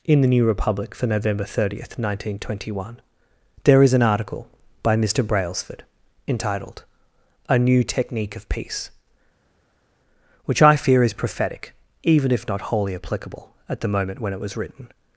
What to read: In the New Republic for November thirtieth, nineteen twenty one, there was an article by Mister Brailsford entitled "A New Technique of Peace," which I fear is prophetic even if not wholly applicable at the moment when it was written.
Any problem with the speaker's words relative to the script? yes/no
yes